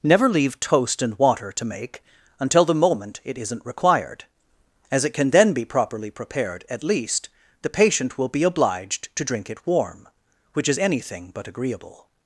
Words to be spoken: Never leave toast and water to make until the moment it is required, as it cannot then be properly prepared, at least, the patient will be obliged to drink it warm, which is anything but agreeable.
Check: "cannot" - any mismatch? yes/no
yes